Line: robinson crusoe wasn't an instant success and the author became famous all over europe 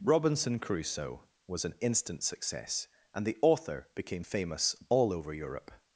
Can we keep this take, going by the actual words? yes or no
no